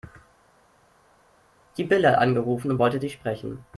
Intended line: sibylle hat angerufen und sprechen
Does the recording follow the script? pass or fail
fail